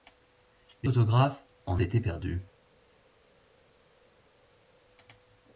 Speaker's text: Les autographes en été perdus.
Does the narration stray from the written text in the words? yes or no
no